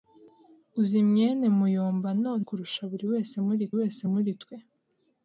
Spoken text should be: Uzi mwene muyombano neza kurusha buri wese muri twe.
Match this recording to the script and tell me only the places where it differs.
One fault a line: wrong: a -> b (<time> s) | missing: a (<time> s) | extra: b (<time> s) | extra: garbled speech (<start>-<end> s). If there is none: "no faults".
missing: neza (2.3 s)
extra: wese muri (3.8 s)